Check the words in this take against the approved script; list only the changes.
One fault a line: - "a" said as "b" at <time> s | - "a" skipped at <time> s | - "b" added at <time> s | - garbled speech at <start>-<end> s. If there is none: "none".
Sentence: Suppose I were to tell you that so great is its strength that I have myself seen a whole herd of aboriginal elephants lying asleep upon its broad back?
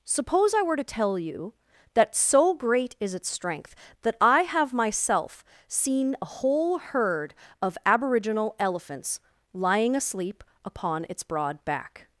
none